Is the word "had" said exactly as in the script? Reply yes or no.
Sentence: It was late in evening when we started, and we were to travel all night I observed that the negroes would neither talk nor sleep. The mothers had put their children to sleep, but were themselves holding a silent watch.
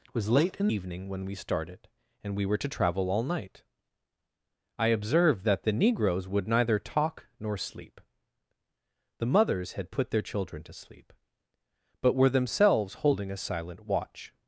yes